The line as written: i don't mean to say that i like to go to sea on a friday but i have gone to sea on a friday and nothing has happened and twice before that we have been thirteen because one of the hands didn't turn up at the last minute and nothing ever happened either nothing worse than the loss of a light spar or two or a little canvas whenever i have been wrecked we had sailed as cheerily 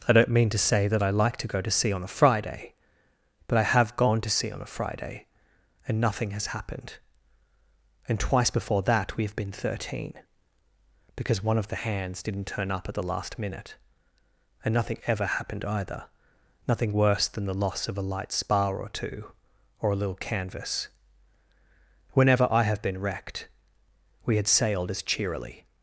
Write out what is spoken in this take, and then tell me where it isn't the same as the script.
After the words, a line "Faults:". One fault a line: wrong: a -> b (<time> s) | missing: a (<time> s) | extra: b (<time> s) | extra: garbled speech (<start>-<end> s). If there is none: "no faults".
i don't mean to say that i like to go to sea on a friday but i have gone to sea on a friday and nothing has happened and twice before that we have been thirteen because one of the hands didn't turn up at the last minute and nothing ever happened either nothing worse than the loss of a light spar or two or a little canvas whenever i have been wrecked we had sailed as cheerily
Faults:
no faults